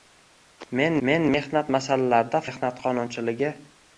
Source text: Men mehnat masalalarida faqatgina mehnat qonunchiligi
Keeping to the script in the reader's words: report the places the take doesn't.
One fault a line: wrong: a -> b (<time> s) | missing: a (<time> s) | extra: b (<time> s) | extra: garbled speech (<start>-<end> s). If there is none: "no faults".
extra: men (1.1 s)
missing: faqatgina (2.4 s)